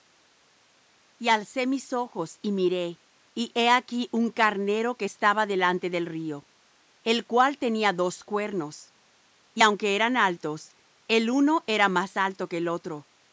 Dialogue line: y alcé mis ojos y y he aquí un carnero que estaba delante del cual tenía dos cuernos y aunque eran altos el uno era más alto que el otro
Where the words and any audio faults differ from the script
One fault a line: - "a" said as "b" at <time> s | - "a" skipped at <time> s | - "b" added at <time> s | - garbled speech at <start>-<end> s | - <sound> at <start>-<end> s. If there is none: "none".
- "miré" added at 2.5 s
- "río el" added at 6.1 s